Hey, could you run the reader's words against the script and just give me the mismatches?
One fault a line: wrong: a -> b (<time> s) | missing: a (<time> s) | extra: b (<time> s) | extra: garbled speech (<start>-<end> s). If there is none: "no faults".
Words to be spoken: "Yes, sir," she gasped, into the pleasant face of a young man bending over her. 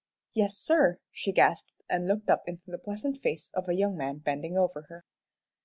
extra: and looked up (1.9 s)